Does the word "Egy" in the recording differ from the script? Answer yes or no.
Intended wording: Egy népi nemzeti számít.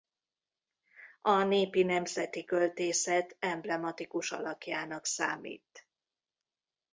yes